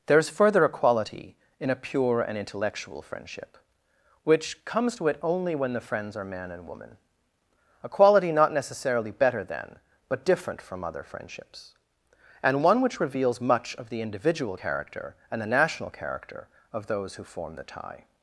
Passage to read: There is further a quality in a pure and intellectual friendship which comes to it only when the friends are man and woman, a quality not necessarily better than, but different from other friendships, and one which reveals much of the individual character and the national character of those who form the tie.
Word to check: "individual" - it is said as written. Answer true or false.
true